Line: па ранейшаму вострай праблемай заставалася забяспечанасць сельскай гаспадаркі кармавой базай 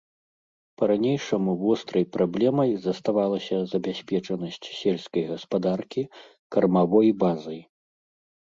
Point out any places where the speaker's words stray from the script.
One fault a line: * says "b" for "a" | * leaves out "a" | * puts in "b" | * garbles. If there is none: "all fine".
all fine